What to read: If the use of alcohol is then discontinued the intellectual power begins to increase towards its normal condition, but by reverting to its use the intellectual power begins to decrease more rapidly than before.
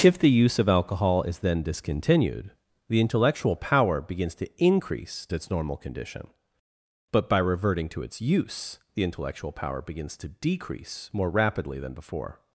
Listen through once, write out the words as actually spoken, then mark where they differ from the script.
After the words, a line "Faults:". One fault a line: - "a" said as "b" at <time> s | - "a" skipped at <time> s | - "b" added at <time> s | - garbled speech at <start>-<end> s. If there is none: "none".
If the use of alcohol is then discontinued the intellectual power begins to increase its normal condition, but by reverting to its use the intellectual power begins to decrease more rapidly than before.
Faults:
- "towards" skipped at 5.3 s